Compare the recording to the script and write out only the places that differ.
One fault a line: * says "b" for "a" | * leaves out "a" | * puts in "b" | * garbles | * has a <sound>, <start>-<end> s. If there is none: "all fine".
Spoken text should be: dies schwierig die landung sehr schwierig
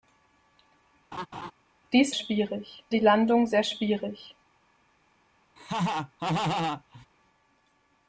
* has a laugh, 1.1-1.5 s
* has a laugh, 5.6-7.1 s